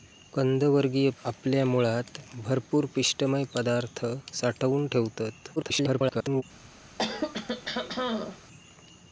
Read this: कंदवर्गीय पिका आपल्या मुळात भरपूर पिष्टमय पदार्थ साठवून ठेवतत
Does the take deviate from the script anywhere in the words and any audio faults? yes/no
yes